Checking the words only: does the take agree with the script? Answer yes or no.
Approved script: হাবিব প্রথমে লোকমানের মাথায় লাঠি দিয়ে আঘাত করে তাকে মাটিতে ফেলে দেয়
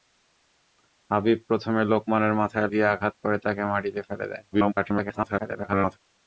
no